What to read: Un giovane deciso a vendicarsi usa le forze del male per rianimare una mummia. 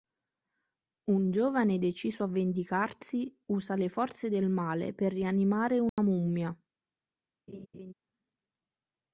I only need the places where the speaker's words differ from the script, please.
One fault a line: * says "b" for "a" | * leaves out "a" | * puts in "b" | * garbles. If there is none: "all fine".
all fine